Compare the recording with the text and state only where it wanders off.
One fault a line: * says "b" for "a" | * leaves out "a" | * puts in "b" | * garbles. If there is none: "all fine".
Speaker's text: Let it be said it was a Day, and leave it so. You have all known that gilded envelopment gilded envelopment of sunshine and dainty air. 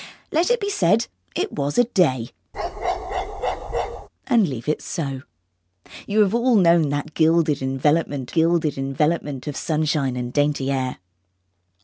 all fine